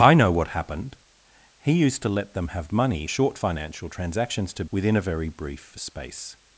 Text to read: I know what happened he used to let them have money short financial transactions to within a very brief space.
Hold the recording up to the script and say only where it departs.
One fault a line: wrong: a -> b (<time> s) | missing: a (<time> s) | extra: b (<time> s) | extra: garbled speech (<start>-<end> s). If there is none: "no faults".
no faults